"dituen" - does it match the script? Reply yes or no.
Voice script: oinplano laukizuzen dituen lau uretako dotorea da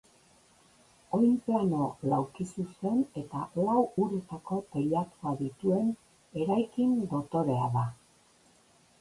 no